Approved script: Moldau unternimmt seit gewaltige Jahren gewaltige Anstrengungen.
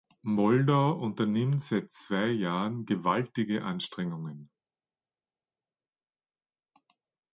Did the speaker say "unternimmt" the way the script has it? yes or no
yes